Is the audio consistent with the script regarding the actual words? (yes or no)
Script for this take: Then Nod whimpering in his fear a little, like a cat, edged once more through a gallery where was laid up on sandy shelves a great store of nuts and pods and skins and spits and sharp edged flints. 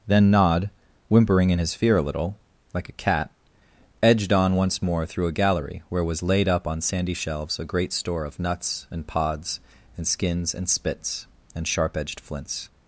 no